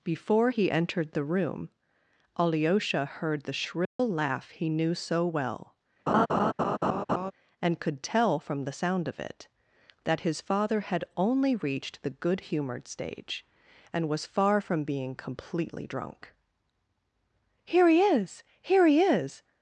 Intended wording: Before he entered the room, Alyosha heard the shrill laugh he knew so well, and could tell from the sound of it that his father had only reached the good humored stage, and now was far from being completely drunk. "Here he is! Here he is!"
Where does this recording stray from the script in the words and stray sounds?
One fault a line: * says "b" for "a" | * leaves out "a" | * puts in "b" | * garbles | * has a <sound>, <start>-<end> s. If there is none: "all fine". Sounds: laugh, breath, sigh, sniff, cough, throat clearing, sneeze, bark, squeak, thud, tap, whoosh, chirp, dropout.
* has a dropout, 3.8-4.0 s
* has a laugh, 6.1-7.3 s
* leaves out "now"